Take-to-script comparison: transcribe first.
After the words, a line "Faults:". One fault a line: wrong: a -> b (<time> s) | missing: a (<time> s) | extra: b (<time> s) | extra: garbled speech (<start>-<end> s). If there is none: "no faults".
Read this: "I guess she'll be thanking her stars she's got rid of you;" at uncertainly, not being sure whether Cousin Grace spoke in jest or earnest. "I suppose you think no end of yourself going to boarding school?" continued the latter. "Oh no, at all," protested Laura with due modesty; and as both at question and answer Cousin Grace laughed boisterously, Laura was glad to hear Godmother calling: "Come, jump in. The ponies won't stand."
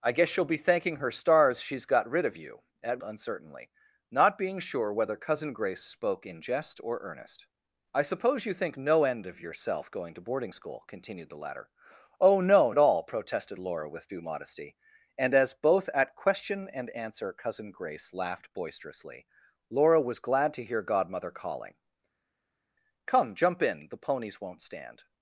"I guess she'll be thanking her stars she's got rid of you;" at uncertainly, not being sure whether Cousin Grace spoke in jest or earnest. "I suppose you think no end of yourself going to boarding school?" continued the latter. "Oh no, at all," protested Laura with due modesty; and as both at question and answer Cousin Grace laughed boisterously, Laura was glad to hear Godmother calling: "Come, jump in. The ponies won't stand."
Faults:
no faults